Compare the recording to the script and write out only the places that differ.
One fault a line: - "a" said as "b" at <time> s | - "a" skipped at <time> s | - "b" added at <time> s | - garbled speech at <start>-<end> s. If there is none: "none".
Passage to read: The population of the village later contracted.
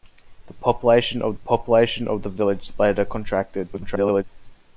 - "population of" added at 1.4 s
- garbled speech at 3.7-4.2 s